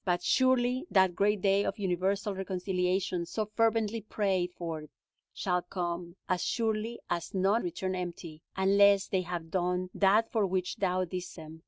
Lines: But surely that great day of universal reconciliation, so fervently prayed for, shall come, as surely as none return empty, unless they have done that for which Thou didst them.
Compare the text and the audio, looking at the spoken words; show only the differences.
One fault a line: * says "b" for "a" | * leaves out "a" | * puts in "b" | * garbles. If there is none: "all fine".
all fine